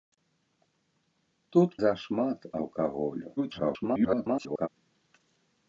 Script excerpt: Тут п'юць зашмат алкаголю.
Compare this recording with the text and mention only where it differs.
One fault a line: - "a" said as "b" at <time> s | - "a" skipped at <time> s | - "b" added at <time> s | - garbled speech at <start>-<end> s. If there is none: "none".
- "п'юць" skipped at 1.7 s
- garbled speech at 3.4-4.7 s